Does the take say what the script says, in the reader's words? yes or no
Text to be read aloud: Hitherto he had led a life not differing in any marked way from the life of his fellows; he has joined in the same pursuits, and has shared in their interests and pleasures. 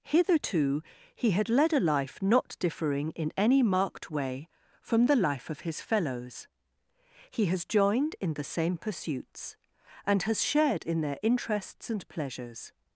yes